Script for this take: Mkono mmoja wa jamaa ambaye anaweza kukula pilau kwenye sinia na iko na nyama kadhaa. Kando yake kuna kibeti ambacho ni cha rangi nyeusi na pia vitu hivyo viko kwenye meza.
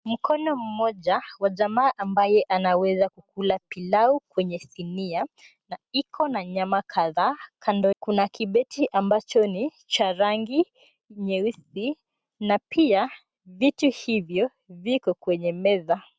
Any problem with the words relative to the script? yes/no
yes